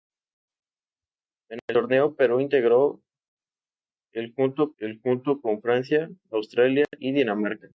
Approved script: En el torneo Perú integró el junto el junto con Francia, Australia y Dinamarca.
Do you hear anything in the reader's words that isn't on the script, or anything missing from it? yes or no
no